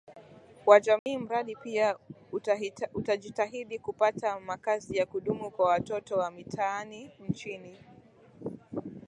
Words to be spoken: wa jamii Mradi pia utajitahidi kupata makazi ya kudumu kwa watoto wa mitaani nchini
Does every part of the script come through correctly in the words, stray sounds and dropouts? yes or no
no